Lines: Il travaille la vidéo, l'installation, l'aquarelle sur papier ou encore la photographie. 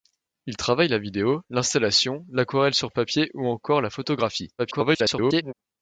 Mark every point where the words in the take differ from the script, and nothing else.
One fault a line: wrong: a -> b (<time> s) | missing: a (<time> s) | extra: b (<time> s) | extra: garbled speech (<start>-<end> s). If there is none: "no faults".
extra: garbled speech (4.6-5.5 s)